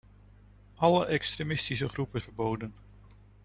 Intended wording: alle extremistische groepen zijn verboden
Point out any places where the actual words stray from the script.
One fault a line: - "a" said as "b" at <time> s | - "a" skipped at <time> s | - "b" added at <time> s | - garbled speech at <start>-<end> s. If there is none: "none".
- "zijn" skipped at 2.2 s